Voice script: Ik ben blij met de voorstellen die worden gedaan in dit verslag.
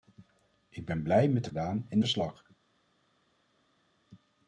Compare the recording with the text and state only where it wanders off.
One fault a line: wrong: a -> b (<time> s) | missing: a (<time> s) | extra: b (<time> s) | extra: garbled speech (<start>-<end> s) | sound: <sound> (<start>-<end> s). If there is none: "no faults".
missing: voorstellen die worden (1.5 s)
missing: dit (2.0 s)